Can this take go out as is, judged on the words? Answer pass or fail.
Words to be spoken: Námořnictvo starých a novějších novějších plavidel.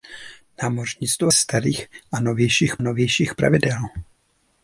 pass